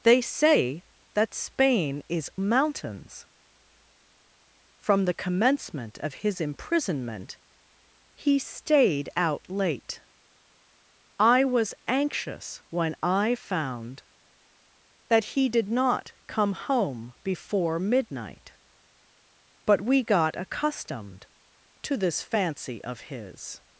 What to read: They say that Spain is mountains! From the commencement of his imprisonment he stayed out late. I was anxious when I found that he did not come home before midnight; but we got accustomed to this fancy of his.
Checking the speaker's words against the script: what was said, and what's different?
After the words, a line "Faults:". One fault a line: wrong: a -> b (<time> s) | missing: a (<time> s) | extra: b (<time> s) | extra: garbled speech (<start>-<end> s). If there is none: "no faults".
They say that Spain is mountains! From the commencement of his imprisonment he stayed out late. I was anxious when I found that he did not come home before midnight; but we got accustomed to this fancy of his.
Faults:
no faults